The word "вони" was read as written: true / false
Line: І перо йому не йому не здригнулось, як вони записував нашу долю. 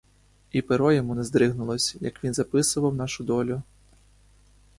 false